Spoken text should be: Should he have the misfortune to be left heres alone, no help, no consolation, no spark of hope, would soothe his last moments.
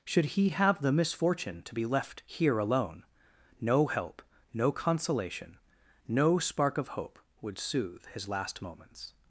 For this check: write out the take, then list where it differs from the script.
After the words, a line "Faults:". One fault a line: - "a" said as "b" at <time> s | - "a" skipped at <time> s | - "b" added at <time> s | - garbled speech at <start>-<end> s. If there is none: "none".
Should he have the misfortune to be left here alone, no help, no consolation, no spark of hope, would soothe his last moments.
Faults:
- "heres" said as "here" at 2.2 s